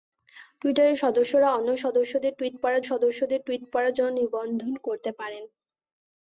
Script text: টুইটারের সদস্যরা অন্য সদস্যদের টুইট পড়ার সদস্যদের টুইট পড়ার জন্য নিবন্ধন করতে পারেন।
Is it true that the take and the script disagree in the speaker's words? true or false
false